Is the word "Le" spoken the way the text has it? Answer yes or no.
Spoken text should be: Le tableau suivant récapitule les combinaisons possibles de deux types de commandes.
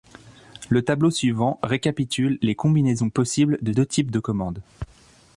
yes